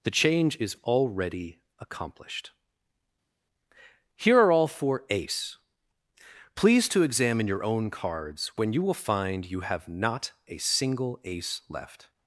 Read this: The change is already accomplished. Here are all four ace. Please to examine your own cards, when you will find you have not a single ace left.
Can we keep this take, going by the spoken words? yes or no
yes